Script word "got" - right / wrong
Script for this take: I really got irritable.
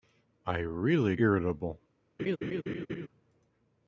wrong